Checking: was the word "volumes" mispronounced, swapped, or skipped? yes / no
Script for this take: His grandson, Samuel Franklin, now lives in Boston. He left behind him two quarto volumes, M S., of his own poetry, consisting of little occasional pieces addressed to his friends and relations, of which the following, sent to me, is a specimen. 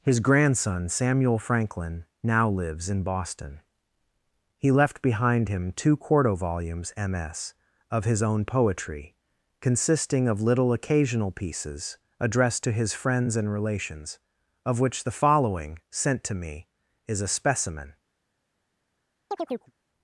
no